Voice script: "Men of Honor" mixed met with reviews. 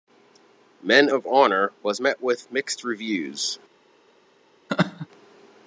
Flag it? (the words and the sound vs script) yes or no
yes